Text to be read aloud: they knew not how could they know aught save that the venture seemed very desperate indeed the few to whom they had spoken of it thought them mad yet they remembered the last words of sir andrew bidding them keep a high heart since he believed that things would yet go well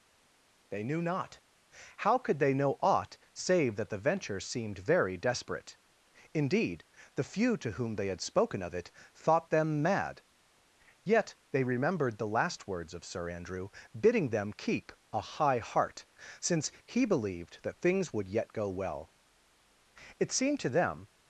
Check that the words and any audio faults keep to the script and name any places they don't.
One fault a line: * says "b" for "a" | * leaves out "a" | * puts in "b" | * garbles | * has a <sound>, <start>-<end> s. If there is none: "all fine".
* puts in "it seemed to them"